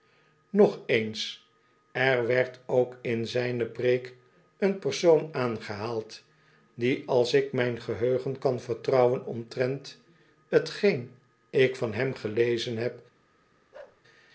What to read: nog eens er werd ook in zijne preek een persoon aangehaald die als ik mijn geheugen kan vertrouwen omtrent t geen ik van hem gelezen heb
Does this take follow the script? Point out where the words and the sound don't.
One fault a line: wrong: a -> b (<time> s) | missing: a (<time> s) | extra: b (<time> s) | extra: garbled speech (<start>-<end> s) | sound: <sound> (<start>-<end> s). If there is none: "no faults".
sound: bark (13.7-14.0 s)